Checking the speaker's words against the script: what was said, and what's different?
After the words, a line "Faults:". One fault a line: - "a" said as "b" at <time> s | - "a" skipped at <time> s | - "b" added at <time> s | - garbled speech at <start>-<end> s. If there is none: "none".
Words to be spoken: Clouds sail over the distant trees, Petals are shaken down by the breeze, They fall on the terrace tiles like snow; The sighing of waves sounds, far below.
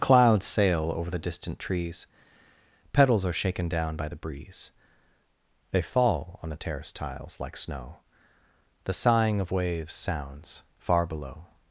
Clouds sail over the distant trees, Petals are shaken down by the breeze, They fall on the terrace tiles like snow; The sighing of waves sounds, far below.
Faults:
none